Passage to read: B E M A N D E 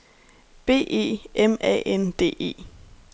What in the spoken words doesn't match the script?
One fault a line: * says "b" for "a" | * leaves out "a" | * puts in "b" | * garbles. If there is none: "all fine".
all fine